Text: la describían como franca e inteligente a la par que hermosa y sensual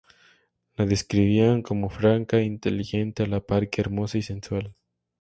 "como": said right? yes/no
yes